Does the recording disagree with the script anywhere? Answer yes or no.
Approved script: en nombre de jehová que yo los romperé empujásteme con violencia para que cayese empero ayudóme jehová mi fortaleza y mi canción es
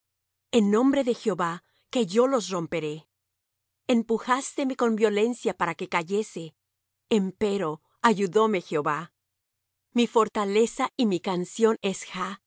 no